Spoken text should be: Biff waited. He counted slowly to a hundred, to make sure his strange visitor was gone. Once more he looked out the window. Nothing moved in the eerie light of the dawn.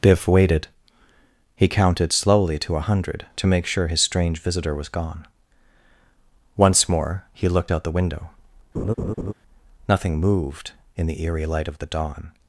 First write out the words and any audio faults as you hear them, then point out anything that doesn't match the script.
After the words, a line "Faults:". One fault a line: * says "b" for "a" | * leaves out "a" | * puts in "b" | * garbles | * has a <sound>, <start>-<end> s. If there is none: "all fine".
Biff waited. He counted slowly to a hundred, to make sure his strange visitor was gone. Once more he looked out the window. Nothing moved in the eerie light of the dawn.
Faults:
* has a laugh, 8.7-9.3 s